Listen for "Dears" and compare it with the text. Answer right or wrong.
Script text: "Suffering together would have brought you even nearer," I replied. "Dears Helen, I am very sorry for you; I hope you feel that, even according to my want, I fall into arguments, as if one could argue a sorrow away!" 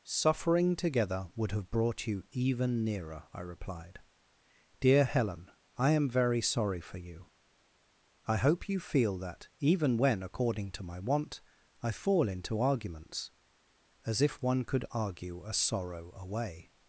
wrong